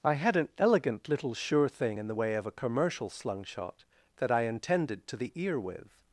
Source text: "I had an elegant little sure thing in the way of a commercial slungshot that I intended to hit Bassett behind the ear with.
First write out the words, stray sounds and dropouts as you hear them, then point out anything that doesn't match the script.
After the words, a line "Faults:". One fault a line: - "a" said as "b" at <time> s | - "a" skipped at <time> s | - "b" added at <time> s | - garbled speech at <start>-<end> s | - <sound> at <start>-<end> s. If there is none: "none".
"I had an elegant little sure thing in the way of a commercial slungshot that I intended to the ear with.
Faults:
- "hit Bassett behind" skipped at 5.2 s